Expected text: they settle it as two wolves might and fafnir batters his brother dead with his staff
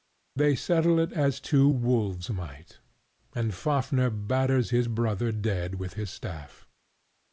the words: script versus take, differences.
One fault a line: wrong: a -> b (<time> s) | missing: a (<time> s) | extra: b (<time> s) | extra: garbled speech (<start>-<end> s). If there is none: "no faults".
no faults